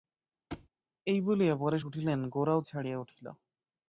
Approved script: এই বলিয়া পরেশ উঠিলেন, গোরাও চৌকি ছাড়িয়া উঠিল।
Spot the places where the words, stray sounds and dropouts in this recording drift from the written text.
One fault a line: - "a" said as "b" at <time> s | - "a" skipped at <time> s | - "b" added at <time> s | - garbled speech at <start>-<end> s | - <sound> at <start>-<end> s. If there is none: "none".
- thud at 0.5-0.7 s
- "চৌকি" skipped at 2.6 s